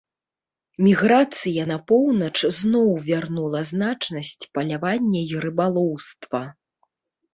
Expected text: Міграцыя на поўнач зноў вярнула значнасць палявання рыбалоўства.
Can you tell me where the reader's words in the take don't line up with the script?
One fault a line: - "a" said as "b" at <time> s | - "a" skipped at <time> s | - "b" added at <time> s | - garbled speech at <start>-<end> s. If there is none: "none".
- "і" added at 5.3 s